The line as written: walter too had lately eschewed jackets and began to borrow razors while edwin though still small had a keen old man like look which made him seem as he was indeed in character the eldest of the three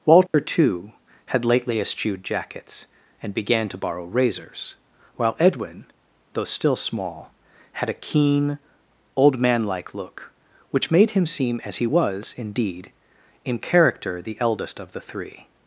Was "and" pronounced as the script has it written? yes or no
yes